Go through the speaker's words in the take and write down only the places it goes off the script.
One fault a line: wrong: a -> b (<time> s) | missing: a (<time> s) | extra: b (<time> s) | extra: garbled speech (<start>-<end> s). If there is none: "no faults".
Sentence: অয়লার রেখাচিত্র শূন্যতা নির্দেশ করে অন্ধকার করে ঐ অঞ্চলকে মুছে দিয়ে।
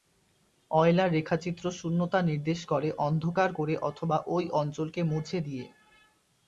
extra: অথবা (3.9 s)